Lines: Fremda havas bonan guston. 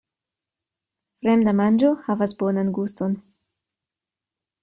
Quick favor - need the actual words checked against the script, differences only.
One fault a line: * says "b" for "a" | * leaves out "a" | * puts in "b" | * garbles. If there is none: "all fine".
* puts in "manĝo"